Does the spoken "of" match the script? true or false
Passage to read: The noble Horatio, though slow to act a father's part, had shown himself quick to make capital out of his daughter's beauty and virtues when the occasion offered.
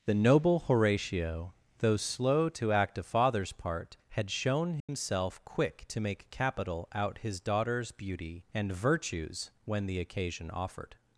false